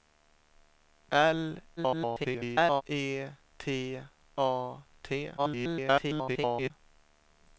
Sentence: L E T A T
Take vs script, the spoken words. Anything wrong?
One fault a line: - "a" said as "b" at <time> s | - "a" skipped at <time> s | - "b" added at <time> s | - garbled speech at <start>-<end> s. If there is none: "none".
- garbled speech at 1.8-2.8 s
- garbled speech at 5.4-6.7 s